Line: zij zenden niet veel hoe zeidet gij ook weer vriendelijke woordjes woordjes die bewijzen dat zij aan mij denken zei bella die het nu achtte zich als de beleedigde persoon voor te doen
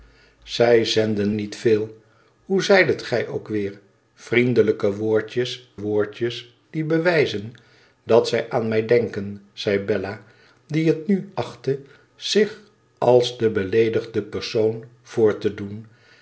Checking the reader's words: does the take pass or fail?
pass